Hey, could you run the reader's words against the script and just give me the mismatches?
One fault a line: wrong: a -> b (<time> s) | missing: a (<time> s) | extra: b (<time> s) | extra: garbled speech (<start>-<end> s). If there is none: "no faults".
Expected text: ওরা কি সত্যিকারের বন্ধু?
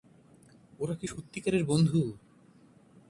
no faults